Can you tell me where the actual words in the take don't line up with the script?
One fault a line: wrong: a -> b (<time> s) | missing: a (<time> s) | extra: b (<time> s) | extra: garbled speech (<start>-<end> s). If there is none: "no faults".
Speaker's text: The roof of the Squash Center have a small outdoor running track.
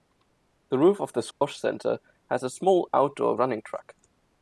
wrong: have -> has (2.3 s)